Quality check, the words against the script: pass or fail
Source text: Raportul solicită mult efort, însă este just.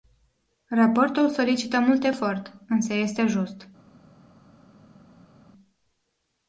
pass